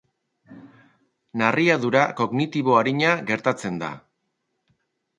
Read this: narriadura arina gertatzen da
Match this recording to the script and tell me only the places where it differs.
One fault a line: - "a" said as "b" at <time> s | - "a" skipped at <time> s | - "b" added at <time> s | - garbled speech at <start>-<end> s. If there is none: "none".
- "kognitibo" added at 2.2 s